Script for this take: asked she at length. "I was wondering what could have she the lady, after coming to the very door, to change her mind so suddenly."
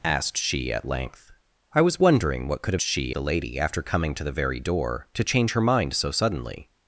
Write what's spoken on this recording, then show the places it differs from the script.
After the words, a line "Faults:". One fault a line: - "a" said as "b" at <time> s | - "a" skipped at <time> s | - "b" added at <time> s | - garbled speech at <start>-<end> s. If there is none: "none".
asked she at length. "I was wondering what could have she the lady, after coming to the very door, to change her mind so suddenly."
Faults:
none